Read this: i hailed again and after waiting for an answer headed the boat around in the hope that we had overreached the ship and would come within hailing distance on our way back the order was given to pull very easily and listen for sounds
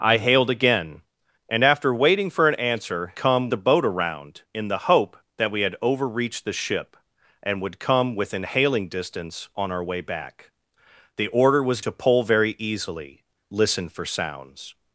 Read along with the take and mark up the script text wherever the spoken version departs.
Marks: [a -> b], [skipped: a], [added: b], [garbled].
i hailed again and after waiting for an answer [headed -> come] the boat around in the hope that we had overreached the ship and would come within hailing distance on our way back the order was [skipped: given] to pull very easily [skipped: and] listen for sounds